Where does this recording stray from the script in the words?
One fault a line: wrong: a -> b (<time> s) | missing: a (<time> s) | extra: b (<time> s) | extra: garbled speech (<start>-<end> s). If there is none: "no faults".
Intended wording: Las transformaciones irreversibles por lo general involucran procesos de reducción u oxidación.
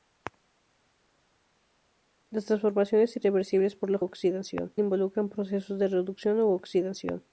wrong: general -> oxidación (4.0 s)